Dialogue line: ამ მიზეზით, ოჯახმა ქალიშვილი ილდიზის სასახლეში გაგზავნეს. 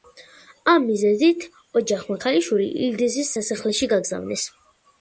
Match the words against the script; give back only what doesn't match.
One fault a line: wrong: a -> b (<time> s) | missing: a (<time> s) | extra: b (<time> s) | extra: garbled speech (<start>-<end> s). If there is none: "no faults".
no faults